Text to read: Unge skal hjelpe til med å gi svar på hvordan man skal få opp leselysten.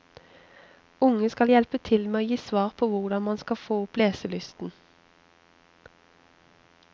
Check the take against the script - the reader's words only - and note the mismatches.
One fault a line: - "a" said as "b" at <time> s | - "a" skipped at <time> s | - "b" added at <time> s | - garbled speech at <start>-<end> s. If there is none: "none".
none